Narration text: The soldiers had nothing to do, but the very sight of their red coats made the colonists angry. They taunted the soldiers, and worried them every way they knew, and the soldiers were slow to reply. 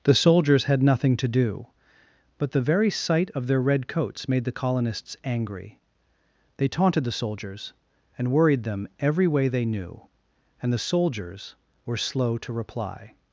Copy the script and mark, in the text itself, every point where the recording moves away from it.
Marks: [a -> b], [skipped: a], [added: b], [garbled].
The soldiers had nothing to do, but the very sight of their red coats made the colonists angry. They taunted the soldiers, and worried them every way they knew, and the soldiers were slow to reply.